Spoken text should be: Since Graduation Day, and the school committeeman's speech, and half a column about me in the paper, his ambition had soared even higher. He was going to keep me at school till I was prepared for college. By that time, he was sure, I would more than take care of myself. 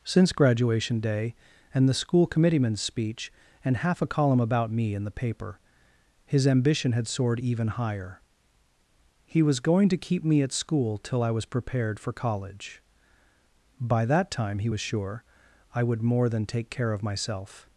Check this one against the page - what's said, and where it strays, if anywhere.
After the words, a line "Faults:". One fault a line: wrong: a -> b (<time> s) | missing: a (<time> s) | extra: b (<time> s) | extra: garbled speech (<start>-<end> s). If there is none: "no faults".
Since Graduation Day, and the school committeeman's speech, and half a column about me in the paper, his ambition had soared even higher. He was going to keep me at school till I was prepared for college. By that time, he was sure, I would more than take care of myself.
Faults:
no faults